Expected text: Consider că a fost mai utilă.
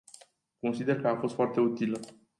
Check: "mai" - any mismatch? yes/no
yes